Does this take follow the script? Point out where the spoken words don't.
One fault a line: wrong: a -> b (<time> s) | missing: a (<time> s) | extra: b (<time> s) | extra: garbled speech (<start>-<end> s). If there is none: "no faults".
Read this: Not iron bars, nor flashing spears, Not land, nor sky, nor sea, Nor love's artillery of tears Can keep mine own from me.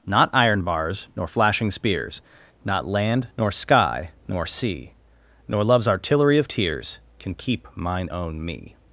missing: from (8.4 s)